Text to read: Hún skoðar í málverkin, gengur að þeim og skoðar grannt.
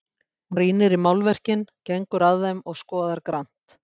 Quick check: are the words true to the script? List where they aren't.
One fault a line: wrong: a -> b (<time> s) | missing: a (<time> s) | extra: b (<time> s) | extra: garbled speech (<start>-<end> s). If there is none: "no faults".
wrong: skoðar -> rýnir (0.6 s)